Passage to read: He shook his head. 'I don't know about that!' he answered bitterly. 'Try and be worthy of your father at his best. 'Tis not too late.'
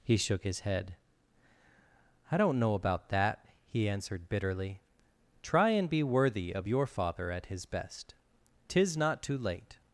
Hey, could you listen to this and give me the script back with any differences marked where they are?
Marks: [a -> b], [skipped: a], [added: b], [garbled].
He shook his head. 'I don't know about that!' he answered bitterly. 'Try and be worthy of your father at his best. 'Tis not too late.'